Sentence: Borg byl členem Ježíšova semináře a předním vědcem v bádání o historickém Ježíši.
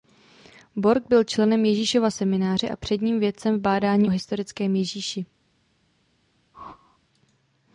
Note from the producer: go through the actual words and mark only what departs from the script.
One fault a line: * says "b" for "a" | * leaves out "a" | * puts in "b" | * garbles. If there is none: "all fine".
all fine